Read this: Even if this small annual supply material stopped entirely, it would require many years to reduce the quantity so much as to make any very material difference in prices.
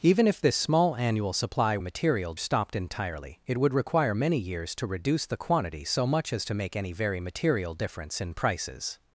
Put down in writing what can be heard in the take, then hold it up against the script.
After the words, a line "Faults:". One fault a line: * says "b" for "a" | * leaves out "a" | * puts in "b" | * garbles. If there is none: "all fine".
Even if this small annual supply material stopped entirely, it would require many years to reduce the quantity so much as to make any very material difference in prices.
Faults:
all fine